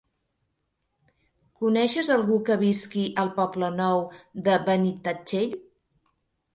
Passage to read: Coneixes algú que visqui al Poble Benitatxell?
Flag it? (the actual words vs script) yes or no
yes